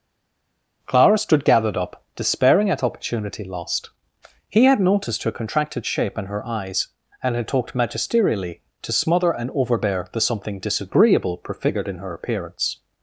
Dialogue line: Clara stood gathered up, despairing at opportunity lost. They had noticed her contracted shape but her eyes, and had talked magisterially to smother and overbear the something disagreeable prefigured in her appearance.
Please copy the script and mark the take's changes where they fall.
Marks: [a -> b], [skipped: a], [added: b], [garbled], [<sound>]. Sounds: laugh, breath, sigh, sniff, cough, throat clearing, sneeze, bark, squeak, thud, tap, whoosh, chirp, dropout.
Clara stood gathered up, despairing at opportunity lost. [They -> He] had noticed her contracted shape [but -> and] her eyes, and had talked magisterially to smother and overbear the something disagreeable prefigured in her appearance.